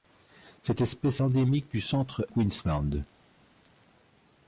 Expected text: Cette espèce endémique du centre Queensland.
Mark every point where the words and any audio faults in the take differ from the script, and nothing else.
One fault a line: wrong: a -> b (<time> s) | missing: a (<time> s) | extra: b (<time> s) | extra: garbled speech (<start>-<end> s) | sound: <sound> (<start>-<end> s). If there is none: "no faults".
no faults